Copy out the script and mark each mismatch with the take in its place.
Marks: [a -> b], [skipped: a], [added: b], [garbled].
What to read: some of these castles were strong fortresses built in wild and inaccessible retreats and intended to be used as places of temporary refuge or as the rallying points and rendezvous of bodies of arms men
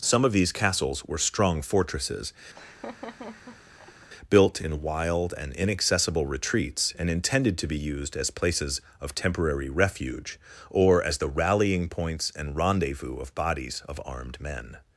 some of these castles were strong fortresses built in wild and inaccessible retreats and intended to be used as places of temporary refuge or as the rallying points and rendezvous of bodies of [arms -> armed] men